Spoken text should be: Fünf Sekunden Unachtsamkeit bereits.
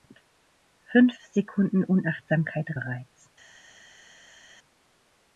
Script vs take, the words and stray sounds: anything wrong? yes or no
no